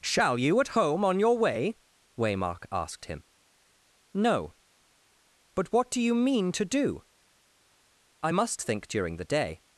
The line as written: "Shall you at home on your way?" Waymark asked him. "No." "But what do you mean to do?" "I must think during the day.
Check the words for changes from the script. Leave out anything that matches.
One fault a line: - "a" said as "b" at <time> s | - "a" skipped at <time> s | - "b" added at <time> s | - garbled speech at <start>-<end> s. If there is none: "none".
none